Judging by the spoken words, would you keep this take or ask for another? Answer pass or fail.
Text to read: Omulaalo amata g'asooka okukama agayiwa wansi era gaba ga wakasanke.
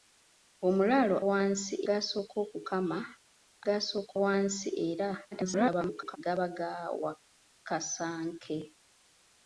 fail